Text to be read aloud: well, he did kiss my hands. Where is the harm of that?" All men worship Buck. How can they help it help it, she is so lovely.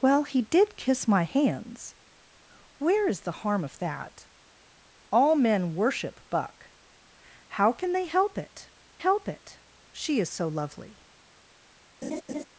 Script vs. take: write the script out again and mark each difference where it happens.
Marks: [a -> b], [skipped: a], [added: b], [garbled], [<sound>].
well, he did kiss my hands. Where is the harm of that?" All men worship Buck. How can they help it help it, she is so lovely. [laugh]